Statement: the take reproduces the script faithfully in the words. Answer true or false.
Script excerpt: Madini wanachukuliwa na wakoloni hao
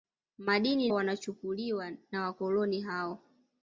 true